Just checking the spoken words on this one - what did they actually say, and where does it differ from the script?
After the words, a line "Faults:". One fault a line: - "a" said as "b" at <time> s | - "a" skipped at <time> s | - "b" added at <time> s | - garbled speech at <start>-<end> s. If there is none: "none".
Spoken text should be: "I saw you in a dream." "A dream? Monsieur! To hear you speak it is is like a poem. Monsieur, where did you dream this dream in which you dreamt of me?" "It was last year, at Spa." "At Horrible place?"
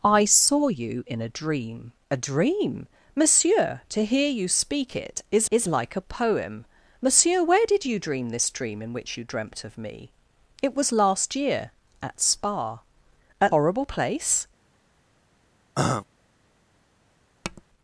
"I saw you in a dream." "A dream? Monsieur! To hear you speak it is is like a poem. Monsieur, where did you dream this dream in which you dreamt of me?" "It was last year, at Spa." "At Horrible place?"
Faults:
none